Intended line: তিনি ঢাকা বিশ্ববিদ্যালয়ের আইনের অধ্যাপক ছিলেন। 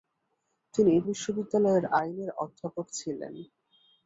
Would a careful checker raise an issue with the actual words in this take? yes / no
yes